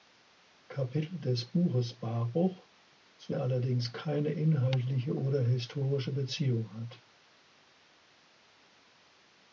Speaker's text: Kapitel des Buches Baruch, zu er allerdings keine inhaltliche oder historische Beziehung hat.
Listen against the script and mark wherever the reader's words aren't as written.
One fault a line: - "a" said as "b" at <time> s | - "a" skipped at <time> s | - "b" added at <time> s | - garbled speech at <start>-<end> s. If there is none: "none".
none